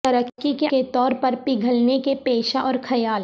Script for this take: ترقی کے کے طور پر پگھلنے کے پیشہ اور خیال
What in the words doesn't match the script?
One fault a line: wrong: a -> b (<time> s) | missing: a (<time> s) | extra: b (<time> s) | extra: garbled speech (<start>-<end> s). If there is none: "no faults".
no faults